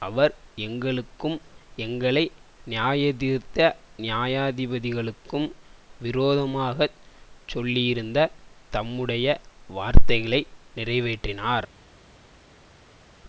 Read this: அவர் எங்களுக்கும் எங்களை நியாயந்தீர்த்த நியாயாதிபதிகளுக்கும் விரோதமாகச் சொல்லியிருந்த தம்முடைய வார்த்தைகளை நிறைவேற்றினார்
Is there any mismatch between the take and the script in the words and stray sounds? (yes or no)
no